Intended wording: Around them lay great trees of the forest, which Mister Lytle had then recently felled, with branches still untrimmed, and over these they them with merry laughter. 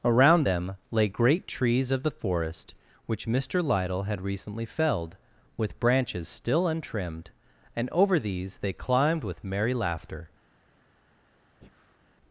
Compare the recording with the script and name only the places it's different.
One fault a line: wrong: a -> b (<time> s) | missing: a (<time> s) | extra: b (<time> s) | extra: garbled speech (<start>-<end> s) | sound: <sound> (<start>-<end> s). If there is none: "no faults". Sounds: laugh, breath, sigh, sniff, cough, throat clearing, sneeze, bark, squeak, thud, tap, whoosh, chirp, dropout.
missing: then (4.2 s)
wrong: them -> climbed (8.7 s)
sound: breath (11.6-12.0 s)